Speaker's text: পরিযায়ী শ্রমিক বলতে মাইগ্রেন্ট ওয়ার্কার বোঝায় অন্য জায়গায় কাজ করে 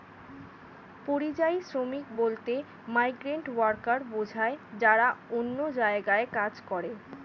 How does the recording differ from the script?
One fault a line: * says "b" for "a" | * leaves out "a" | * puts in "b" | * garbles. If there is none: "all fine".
* puts in "যারা"